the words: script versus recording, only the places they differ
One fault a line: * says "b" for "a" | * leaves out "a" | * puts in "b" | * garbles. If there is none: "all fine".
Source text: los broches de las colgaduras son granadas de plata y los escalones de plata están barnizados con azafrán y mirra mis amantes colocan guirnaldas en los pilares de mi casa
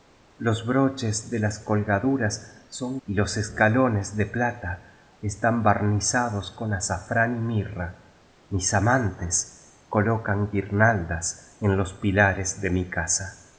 * leaves out "granadas de plata"